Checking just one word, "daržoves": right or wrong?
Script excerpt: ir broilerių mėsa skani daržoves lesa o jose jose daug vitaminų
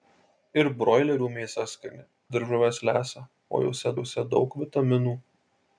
right